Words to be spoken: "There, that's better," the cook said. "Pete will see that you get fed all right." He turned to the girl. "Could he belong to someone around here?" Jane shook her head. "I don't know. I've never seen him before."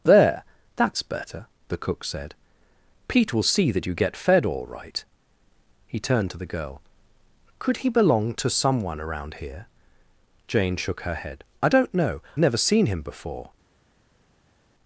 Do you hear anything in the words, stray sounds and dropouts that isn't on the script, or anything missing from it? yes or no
yes